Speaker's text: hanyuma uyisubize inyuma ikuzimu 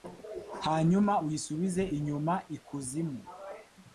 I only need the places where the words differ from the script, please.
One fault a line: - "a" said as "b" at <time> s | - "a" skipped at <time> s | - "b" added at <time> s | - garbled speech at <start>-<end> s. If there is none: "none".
none